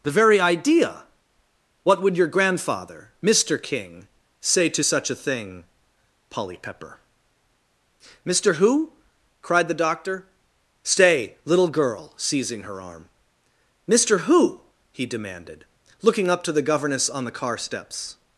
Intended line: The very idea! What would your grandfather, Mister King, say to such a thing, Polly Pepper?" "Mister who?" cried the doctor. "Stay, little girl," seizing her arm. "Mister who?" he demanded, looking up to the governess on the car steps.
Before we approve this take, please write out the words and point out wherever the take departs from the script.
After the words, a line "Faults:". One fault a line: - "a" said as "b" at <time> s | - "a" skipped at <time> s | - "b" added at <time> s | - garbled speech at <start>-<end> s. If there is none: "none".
The very idea! What would your grandfather, Mister King, say to such a thing, Polly Pepper?" "Mister who?" cried the doctor. "Stay, little girl," seizing her arm. "Mister who?" he demanded, looking up to the governess on the car steps.
Faults:
none